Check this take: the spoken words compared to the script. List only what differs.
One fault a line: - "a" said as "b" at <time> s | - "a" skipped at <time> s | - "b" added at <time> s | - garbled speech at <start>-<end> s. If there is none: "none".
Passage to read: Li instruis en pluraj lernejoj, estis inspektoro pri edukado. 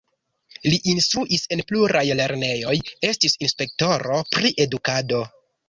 none